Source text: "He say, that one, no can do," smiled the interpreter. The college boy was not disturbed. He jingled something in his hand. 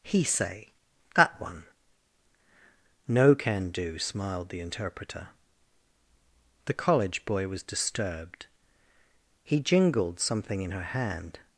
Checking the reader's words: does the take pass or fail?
fail